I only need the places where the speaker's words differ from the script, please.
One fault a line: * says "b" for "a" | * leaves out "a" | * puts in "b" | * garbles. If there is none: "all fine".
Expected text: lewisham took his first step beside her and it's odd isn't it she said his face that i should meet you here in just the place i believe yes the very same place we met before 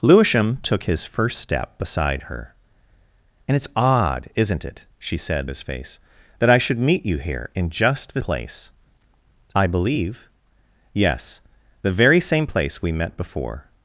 all fine